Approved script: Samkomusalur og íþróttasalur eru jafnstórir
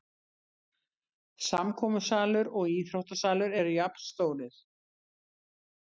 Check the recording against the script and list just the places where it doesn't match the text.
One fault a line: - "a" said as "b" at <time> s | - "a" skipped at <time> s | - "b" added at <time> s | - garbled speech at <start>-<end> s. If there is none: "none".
none